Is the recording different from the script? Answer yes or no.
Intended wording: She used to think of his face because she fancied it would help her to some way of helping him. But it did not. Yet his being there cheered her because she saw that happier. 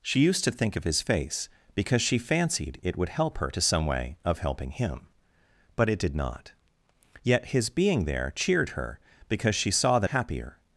no